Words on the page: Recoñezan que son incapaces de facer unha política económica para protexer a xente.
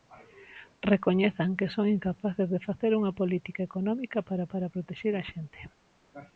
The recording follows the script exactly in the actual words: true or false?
false